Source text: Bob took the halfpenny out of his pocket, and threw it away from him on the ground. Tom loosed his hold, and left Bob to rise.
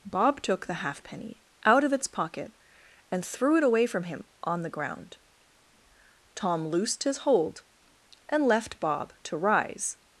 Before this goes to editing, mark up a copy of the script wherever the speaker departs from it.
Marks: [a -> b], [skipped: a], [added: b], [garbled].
Bob took the halfpenny out of [his -> its] pocket, and threw it away from him on the ground. Tom loosed his hold, and left Bob to rise.